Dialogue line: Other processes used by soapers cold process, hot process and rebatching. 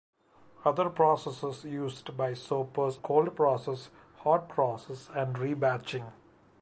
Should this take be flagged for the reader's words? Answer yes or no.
no